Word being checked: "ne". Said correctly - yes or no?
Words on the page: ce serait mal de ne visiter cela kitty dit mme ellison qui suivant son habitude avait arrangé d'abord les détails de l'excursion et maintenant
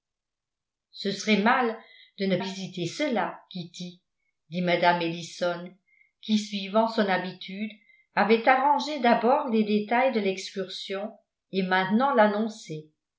yes